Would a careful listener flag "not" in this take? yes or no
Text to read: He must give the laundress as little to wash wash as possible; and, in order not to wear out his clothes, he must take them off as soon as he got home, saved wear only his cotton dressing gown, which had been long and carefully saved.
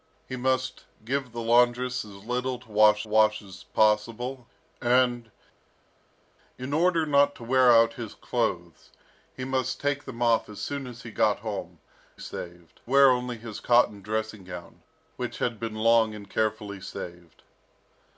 no